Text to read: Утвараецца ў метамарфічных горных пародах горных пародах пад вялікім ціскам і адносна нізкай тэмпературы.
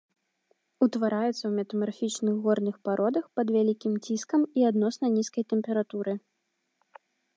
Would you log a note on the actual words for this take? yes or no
yes